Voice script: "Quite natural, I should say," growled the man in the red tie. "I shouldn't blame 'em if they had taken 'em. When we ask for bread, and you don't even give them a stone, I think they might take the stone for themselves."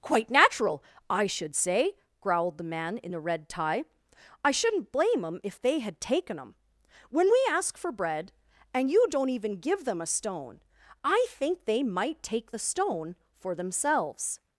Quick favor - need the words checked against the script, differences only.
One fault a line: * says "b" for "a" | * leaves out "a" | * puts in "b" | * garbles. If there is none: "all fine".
all fine